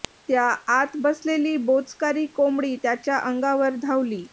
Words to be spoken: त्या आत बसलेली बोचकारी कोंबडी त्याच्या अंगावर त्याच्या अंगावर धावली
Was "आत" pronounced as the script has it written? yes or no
yes